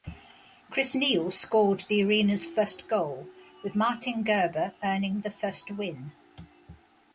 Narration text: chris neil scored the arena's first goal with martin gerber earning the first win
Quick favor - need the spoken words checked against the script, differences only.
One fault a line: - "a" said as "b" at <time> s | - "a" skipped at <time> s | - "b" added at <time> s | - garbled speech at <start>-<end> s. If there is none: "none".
none